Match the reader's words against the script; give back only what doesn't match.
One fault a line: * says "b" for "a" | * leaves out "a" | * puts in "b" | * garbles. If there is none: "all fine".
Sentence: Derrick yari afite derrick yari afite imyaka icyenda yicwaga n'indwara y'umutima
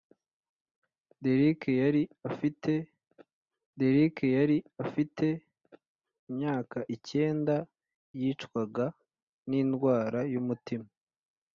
all fine